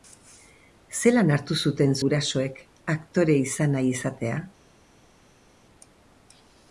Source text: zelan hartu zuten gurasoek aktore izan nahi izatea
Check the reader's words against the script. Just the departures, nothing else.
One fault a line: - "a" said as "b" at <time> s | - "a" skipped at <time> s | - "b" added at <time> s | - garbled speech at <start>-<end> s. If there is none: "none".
none